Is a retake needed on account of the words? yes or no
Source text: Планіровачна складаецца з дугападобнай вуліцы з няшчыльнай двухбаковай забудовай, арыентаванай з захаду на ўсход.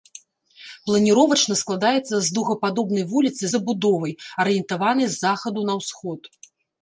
yes